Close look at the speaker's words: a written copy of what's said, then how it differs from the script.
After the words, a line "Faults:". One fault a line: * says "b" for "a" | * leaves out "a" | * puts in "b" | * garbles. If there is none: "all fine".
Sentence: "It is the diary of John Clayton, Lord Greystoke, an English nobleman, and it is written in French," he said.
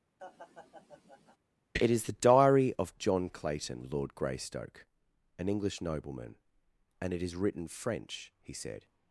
"It is the diary of John Clayton, Lord Greystoke, an English nobleman, and it is written French," he said.
Faults:
* leaves out "in"